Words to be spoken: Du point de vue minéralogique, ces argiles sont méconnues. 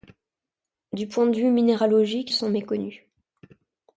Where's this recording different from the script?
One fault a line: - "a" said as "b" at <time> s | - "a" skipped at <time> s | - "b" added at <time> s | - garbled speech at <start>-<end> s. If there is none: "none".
- "ces argiles" skipped at 2.3 s